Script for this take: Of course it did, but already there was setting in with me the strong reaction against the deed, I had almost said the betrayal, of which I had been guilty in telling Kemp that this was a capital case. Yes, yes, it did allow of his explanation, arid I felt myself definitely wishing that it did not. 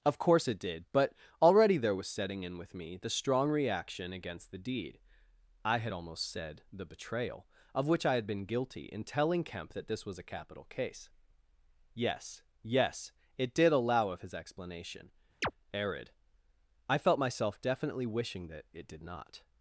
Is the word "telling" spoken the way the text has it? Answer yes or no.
yes